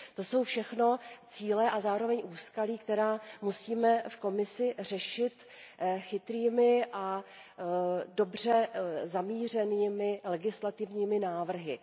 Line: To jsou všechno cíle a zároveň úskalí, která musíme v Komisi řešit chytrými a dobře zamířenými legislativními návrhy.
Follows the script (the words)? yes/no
yes